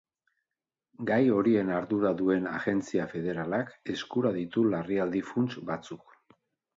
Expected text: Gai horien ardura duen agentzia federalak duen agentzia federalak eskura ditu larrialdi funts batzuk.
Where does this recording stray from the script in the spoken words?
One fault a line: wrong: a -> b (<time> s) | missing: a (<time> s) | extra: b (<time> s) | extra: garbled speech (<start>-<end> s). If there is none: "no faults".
missing: duen agentzia federalak (3.7 s)